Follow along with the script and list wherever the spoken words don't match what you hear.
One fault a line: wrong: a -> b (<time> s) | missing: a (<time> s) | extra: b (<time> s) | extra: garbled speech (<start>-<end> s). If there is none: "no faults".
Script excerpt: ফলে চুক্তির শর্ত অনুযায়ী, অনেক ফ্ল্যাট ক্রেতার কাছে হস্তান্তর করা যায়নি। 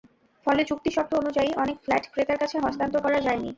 no faults